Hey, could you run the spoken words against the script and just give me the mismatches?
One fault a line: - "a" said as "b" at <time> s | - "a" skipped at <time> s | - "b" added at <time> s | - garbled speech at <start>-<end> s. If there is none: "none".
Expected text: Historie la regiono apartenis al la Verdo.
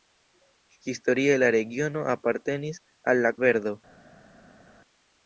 none